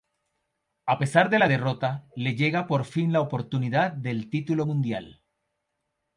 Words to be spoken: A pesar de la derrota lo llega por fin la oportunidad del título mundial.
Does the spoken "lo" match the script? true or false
false